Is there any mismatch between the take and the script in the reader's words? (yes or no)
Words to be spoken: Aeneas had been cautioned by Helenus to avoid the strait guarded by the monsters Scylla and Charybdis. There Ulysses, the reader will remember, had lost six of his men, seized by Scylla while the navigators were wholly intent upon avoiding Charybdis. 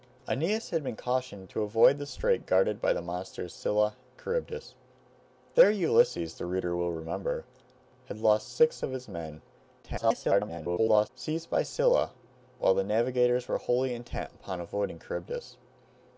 yes